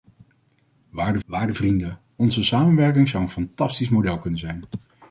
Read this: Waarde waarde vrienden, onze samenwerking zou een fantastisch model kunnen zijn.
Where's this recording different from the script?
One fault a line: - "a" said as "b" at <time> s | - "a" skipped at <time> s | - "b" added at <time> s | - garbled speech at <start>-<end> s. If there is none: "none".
none